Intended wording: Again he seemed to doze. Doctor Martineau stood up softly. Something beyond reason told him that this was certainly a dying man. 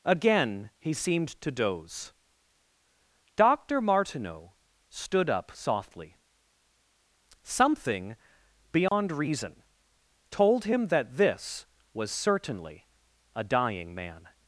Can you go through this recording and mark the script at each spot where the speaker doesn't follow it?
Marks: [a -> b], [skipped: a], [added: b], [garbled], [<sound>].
Again he seemed to doze. Doctor Martineau stood up softly. Something beyond [dropout] reason told him that this was certainly a dying man.